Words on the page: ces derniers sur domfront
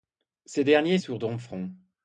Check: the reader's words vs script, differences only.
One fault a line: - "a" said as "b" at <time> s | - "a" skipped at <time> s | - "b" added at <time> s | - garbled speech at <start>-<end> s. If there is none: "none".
none